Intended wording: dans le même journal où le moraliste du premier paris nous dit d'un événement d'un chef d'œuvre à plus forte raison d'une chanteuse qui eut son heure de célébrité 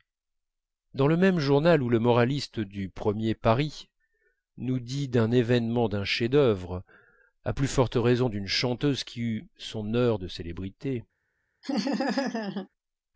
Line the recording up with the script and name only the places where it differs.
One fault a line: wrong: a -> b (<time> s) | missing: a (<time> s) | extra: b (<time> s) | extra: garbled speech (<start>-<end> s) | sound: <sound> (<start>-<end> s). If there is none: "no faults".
sound: laugh (11.6-12.7 s)